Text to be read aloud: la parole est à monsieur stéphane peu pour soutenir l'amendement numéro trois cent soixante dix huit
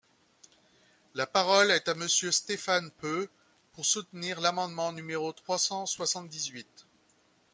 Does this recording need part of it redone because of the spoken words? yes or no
no